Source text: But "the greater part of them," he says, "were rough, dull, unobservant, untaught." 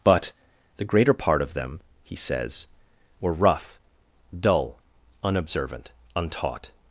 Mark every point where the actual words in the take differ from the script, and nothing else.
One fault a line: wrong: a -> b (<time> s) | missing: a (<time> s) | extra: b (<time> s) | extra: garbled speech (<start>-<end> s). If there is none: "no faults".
no faults